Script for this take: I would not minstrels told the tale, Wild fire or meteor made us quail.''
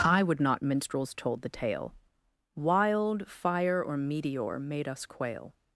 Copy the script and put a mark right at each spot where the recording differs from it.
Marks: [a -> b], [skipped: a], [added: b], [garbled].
I would not minstrels told the tale, Wild fire or meteor made us quail.''